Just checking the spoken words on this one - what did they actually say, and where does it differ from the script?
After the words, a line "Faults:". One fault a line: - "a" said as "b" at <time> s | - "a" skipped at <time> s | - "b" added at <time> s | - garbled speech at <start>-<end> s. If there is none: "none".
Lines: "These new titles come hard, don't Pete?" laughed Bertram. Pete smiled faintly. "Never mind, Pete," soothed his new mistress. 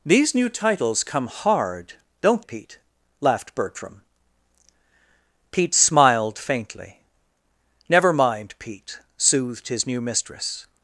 "These new titles come hard, don't Pete?" laughed Bertram. Pete smiled faintly. "Never mind, Pete," soothed his new mistress.
Faults:
none